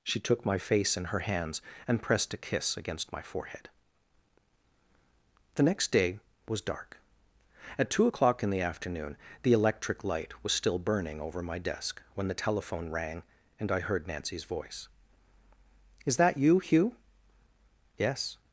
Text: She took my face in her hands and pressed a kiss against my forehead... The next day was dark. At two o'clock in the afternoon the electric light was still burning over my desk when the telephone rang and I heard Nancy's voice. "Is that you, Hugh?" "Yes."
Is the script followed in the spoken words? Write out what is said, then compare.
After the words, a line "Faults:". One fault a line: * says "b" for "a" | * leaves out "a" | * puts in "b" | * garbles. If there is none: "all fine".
She took my face in her hands and pressed a kiss against my forehead... The next day was dark. At two o'clock in the afternoon the electric light was still burning over my desk when the telephone rang and I heard Nancy's voice. "Is that you, Hugh?" "Yes."
Faults:
all fine